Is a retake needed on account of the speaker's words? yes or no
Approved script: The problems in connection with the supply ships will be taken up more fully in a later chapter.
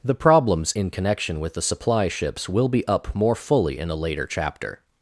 yes